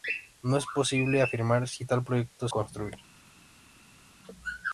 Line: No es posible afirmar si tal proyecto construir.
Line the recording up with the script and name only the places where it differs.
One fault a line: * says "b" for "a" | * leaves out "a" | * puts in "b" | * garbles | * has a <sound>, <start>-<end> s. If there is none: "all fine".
all fine